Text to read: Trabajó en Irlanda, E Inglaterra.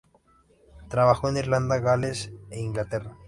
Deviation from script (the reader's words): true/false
true